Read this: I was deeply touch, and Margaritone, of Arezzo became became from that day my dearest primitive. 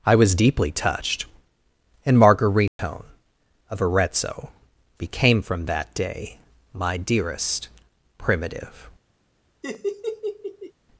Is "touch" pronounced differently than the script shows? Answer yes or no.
yes